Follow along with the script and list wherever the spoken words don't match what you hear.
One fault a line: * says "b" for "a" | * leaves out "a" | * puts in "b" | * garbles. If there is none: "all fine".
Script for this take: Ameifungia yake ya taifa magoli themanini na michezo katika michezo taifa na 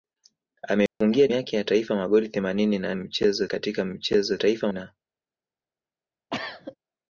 all fine